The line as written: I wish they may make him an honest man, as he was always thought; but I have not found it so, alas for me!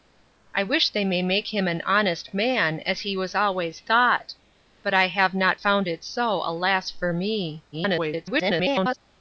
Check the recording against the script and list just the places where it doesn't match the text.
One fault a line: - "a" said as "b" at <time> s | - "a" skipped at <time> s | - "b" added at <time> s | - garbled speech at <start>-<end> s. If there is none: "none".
- garbled speech at 7.7-9.0 s